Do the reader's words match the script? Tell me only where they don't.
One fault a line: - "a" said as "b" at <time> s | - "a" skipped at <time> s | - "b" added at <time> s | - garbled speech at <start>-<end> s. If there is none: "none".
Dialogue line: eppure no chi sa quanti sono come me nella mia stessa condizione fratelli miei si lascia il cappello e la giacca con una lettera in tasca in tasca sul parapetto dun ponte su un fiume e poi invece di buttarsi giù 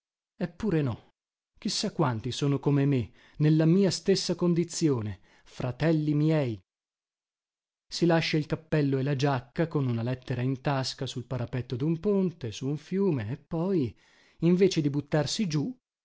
- "in tasca" skipped at 11.1 s